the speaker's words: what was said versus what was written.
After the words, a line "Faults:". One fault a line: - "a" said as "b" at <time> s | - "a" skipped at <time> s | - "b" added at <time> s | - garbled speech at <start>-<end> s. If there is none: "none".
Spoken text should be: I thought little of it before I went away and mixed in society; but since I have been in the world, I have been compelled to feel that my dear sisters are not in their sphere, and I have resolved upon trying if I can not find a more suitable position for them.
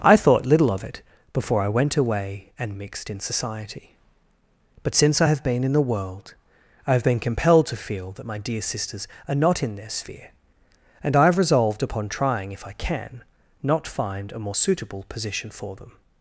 I thought little of it before I went away and mixed in society; but since I have been in the world, I have been compelled to feel that my dear sisters are not in their sphere, and I have resolved upon trying if I can not find a more suitable position for them.
Faults:
none